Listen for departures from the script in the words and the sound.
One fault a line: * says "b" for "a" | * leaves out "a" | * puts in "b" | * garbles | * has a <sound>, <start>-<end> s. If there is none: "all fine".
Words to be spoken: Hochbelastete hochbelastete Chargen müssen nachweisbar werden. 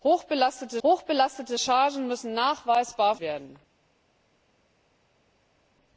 all fine